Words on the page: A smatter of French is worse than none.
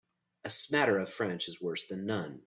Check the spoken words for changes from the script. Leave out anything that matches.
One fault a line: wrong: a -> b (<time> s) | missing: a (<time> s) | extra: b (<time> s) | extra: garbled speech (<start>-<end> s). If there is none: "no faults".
no faults